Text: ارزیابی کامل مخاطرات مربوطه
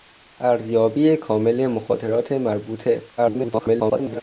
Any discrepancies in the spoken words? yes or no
yes